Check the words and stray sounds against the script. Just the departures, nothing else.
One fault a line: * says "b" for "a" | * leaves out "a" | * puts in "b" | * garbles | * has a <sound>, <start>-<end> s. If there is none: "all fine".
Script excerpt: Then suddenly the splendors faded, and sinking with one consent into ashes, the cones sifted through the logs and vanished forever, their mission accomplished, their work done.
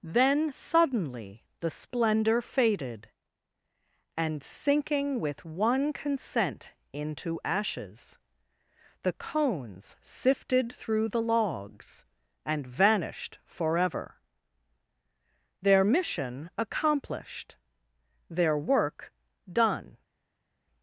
* says "splendor" for "splendors"